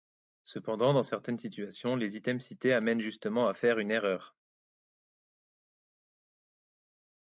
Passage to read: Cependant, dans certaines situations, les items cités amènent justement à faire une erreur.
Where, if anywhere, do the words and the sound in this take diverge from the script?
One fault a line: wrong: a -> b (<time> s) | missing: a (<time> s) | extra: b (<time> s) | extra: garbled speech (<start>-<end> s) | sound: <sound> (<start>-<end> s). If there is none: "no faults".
no faults